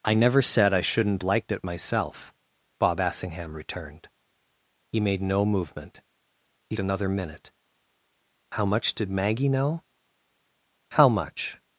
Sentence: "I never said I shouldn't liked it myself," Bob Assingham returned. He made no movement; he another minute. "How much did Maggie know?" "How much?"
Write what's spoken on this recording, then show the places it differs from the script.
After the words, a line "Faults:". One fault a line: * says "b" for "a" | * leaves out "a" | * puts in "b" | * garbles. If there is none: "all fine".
"I never said I shouldn't liked it myself," Bob Assingham returned. He made no movement; he another minute. "How much did Maggie know?" "How much?"
Faults:
all fine